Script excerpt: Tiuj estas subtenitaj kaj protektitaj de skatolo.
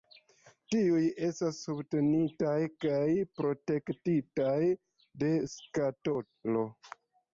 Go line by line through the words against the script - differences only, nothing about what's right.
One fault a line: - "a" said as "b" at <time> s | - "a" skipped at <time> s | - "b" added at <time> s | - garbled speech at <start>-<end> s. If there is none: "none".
none